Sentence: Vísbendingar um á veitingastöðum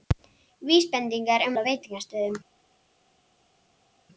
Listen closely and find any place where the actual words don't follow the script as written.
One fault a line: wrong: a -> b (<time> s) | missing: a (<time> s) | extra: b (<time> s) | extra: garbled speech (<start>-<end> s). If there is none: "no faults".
no faults